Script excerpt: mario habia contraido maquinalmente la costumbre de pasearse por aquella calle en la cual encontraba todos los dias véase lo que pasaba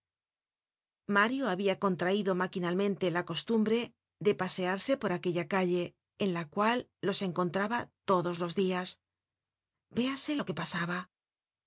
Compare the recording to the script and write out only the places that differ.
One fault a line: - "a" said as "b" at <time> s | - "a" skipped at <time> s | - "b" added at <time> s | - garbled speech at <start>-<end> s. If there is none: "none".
- "los" added at 7.1 s